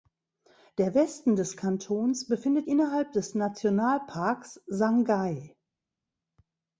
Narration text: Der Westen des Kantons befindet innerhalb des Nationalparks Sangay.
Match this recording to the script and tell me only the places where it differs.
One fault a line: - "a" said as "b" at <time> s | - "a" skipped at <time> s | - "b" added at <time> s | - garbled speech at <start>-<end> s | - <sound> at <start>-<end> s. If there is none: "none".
none